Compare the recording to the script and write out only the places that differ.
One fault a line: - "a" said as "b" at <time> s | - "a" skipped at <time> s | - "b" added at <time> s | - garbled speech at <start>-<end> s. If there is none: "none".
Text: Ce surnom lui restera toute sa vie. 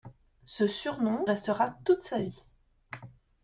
- "lui" skipped at 1.3 s